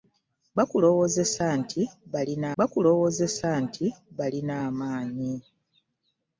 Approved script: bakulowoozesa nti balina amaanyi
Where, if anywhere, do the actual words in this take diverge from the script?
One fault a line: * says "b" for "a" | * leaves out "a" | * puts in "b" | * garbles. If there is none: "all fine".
* puts in "bakulowoozesa nti balina"